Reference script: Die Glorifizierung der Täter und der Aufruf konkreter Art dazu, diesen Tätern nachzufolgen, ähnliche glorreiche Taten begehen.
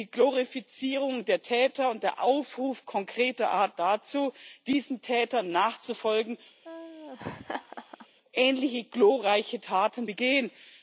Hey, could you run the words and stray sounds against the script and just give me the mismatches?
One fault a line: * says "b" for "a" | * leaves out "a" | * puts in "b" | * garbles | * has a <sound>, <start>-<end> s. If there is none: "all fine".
* has a laugh, 6.6-8.1 s